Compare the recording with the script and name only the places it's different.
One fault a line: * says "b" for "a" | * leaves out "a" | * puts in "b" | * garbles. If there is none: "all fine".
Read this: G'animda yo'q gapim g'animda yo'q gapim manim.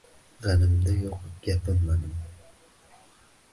* leaves out "g'animda yo'q gapim"